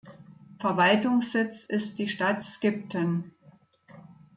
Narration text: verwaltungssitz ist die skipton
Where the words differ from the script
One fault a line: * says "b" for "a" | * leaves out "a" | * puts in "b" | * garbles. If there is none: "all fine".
* puts in "stadt"